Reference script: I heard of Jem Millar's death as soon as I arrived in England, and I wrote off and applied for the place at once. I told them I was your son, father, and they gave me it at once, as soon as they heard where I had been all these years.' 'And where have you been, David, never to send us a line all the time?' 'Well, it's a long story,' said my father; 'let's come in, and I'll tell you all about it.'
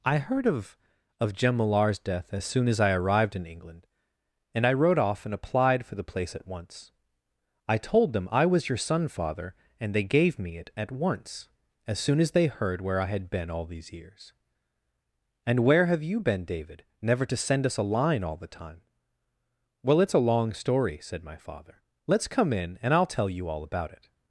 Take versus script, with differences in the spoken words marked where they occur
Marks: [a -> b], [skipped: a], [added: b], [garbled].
I heard of [added: of] Jem Millar's death as soon as I arrived in England, and I wrote off and applied for the place at once. I told them I was your son, father, and they gave me it at once, as soon as they heard where I had been all these years.' 'And where have you been, David, never to send us a line all the time?' 'Well, it's a long story,' said my father; 'let's come in, and I'll tell you all about it.'